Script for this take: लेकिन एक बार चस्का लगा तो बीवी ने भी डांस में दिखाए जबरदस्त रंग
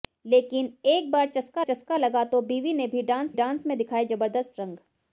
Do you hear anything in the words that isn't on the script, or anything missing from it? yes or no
yes